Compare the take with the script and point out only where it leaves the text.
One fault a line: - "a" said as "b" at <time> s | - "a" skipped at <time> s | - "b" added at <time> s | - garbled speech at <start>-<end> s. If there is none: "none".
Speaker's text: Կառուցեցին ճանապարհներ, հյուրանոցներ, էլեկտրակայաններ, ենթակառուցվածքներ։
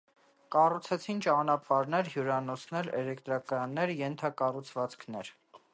none